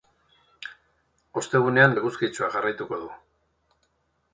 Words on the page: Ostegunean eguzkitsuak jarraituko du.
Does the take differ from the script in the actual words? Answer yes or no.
no